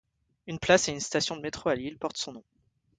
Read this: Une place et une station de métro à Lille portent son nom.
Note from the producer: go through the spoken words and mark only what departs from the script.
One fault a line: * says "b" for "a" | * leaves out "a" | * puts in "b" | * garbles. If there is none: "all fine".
all fine